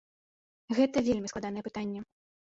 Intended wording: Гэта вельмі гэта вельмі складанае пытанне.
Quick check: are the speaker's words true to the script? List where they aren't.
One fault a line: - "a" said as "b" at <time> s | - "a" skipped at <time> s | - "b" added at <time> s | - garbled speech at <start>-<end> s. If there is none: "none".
- "гэта вельмі" skipped at 1.3 s